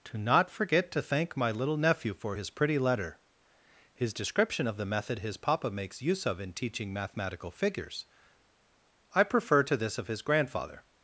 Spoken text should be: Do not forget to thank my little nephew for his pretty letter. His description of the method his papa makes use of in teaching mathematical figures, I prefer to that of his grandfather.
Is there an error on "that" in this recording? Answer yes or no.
yes